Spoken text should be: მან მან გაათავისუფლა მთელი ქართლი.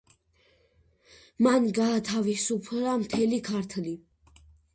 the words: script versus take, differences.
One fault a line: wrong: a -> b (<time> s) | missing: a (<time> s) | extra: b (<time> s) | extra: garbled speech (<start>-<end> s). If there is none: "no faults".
missing: მან (1.7 s)